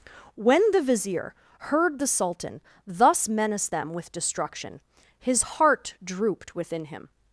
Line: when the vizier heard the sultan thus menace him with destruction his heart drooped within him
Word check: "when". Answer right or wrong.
right